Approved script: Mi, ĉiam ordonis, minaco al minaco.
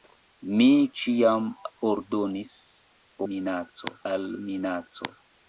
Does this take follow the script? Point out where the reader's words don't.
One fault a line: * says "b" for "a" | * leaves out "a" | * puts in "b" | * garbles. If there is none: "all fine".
all fine